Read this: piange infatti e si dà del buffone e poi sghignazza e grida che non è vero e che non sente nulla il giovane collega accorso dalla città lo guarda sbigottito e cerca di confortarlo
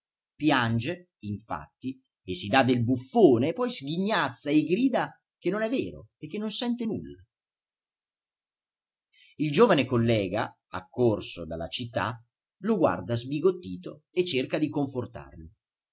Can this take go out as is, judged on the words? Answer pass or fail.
pass